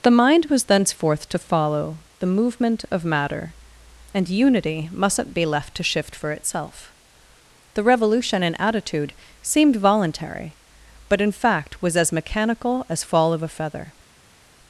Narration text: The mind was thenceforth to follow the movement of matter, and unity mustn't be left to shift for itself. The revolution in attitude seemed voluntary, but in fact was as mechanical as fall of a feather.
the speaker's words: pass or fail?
pass